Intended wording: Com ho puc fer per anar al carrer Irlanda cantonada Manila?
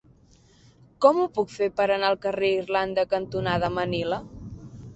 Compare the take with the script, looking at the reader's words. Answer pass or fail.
pass